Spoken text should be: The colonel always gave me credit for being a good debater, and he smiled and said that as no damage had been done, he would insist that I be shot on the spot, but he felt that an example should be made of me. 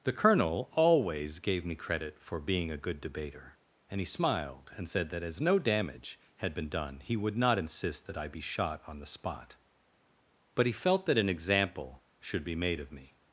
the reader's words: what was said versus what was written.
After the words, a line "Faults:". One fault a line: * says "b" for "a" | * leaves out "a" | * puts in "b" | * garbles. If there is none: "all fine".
The colonel always gave me credit for being a good debater, and he smiled and said that as no damage had been done, he would not insist that I be shot on the spot, but he felt that an example should be made of me.
Faults:
* puts in "not"